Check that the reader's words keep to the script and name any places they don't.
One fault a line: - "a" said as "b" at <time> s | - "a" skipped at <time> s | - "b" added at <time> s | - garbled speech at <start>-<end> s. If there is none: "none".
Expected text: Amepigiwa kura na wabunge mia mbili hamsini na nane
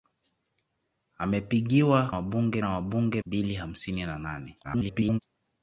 - "kura" said as "wabunge" at 2.1 s
- "mia" skipped at 3.2 s
- garbled speech at 4.6-5.2 s